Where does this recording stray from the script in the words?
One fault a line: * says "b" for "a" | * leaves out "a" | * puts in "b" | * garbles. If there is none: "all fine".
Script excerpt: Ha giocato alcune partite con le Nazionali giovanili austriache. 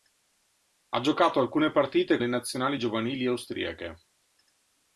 * leaves out "con"